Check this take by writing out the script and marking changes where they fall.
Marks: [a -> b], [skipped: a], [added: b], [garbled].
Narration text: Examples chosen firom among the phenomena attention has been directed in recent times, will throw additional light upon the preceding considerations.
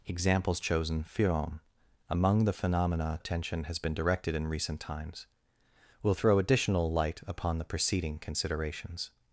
Examples chosen firom among the phenomena attention has been directed in recent times, will throw additional light upon the preceding considerations.